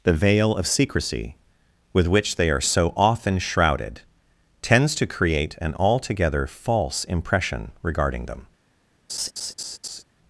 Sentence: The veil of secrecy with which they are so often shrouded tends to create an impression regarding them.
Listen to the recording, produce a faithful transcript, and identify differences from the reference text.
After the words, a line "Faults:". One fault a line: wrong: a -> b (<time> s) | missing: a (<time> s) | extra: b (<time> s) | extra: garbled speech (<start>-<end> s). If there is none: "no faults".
The veil of secrecy with which they are so often shrouded tends to create an altogether false impression regarding them.
Faults:
extra: altogether false (5.8 s)